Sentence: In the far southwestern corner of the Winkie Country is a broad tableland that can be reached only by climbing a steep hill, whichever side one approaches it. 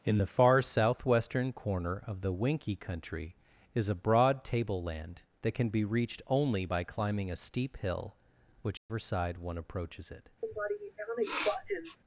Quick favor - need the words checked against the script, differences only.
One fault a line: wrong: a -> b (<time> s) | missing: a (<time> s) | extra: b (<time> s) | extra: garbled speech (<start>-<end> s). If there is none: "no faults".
no faults